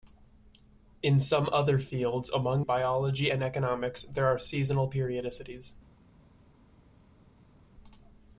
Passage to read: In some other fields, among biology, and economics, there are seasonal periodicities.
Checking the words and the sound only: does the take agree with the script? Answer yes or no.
yes